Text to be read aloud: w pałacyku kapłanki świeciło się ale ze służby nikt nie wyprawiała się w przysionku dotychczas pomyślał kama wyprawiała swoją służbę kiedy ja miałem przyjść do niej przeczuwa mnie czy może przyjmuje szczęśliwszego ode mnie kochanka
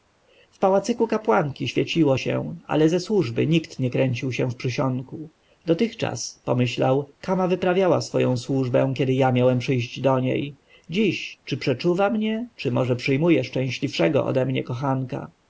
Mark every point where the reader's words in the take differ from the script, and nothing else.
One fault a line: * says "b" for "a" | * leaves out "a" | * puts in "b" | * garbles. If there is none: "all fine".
* says "kręcił" for "wyprawiała"
* puts in "dziś czy"